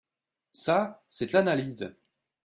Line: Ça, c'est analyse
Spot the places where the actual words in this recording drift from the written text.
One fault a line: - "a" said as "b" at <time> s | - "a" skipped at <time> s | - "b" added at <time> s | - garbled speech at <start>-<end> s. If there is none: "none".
none